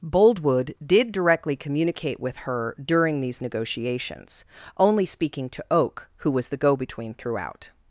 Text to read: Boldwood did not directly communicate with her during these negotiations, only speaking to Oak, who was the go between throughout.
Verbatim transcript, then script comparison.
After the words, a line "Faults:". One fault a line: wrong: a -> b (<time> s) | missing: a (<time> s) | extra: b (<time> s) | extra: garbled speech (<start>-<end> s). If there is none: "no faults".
Boldwood did directly communicate with her during these negotiations, only speaking to Oak, who was the go between throughout.
Faults:
missing: not (1.1 s)